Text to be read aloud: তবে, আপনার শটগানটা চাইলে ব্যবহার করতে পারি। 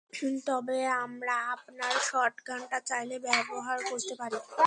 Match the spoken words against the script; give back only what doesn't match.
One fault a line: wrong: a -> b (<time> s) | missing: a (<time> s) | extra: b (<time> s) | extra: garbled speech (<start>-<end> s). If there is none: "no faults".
extra: আমরা (1.0 s)